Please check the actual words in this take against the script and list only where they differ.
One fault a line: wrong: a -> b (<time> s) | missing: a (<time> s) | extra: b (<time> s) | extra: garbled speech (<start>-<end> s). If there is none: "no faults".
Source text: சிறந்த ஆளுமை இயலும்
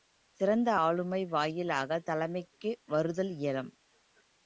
extra: வாயிலாகத் தலைமைக்கு வருதல் (1.3 s)